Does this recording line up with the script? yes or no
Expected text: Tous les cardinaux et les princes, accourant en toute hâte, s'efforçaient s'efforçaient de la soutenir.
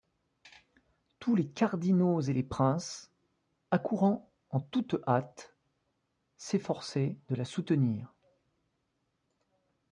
no